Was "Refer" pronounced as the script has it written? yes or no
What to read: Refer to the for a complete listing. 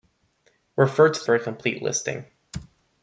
yes